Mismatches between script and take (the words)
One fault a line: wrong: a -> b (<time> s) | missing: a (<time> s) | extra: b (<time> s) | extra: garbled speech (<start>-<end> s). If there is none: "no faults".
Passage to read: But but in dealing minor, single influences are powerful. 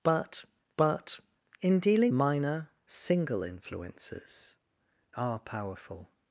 no faults